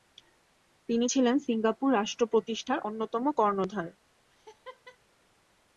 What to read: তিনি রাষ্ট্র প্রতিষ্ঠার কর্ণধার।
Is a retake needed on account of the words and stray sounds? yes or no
yes